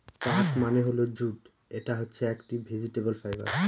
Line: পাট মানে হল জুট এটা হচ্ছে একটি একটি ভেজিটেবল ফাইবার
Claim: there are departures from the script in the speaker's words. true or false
true